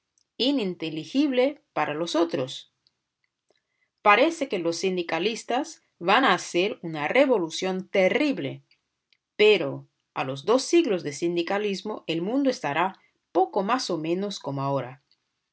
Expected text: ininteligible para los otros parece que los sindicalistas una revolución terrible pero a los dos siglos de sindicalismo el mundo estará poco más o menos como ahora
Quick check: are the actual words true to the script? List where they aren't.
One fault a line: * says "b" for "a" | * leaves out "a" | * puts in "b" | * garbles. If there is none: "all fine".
* puts in "van a hacer"